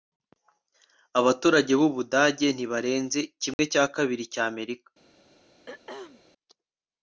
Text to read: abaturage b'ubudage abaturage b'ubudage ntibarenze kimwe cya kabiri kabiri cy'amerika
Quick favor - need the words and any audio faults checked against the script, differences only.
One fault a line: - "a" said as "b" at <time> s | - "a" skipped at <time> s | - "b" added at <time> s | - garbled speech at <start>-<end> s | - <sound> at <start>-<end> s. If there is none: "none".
- "abaturage b'ubudage" skipped at 2.5 s
- dropout at 3.5-3.6 s
- "kabiri" skipped at 4.2 s
- throat clearing at 5.7-6.2 s